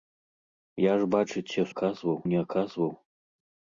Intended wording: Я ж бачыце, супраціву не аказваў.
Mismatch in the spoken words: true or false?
true